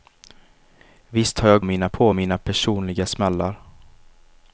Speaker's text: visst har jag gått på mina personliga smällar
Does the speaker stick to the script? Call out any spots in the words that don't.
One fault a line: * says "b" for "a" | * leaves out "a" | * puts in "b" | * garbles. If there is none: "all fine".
* says "mina" for "gått"